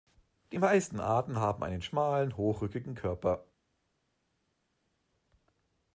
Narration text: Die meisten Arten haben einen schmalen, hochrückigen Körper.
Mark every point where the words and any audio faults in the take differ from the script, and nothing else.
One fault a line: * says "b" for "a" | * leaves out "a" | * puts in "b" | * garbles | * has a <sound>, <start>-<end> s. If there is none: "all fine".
all fine